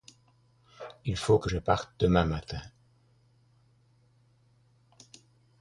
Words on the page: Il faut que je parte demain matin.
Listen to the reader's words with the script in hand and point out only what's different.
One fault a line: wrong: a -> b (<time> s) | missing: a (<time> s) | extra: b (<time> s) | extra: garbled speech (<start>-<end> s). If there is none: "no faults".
no faults